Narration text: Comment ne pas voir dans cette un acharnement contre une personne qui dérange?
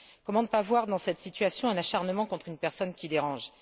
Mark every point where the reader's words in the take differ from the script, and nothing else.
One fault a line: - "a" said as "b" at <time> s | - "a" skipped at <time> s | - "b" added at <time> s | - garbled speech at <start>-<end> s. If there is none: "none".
- "situation" added at 1.2 s